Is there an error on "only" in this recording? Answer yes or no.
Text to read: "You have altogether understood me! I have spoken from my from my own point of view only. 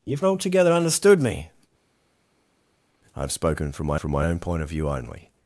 no